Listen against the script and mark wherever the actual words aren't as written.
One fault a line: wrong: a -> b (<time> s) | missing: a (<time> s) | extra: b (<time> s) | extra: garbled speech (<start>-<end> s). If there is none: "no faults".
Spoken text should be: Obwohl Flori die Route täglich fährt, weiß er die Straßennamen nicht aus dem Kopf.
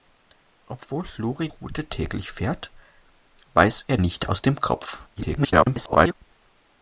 missing: die (1.5 s)
missing: die Straßennamen (4.0 s)
extra: garbled speech (5.2-6.1 s)